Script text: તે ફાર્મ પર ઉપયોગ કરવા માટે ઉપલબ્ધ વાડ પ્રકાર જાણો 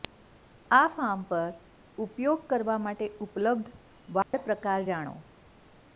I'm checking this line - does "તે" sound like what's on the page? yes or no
no